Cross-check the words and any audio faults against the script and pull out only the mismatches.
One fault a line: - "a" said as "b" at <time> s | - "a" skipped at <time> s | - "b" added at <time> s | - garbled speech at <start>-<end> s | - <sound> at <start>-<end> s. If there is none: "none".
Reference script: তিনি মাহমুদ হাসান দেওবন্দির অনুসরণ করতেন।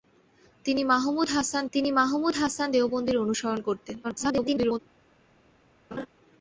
- "তিনি মাহমুদ হাসান" added at 1.7 s
- garbled speech at 4.0-4.8 s
- laugh at 5.9-6.1 s